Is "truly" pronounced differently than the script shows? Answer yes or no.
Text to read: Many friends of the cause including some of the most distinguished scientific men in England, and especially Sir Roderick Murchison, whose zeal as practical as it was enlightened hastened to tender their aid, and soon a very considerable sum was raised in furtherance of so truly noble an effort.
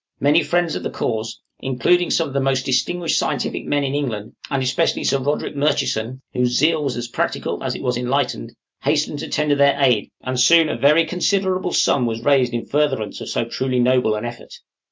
no